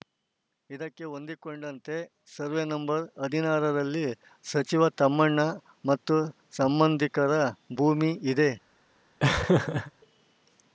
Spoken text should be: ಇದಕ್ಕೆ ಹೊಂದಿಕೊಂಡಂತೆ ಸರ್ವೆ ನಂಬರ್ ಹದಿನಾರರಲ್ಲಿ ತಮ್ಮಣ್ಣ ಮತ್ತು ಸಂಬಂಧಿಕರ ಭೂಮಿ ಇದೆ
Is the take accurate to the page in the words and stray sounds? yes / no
no